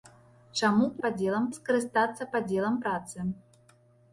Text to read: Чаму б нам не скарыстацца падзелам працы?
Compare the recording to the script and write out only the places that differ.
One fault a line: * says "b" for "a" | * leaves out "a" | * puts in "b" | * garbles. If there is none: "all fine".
* says "падзелам" for "нам"